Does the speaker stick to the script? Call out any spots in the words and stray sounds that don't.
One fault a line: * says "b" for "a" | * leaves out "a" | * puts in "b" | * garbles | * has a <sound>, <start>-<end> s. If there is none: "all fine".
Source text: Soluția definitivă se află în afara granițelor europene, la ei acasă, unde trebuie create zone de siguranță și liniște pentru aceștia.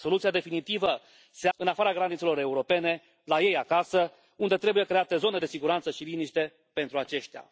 * leaves out "află"